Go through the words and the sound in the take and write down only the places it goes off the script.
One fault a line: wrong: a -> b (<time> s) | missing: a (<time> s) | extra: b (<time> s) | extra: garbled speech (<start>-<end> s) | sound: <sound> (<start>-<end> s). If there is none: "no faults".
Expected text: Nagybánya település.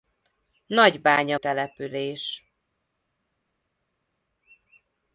no faults